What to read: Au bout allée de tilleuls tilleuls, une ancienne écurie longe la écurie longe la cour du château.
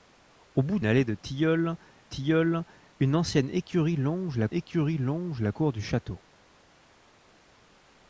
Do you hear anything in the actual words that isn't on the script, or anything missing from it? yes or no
no